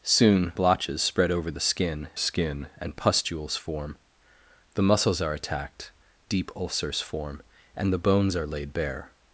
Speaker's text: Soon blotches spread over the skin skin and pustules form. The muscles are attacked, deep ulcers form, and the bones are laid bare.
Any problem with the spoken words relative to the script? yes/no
no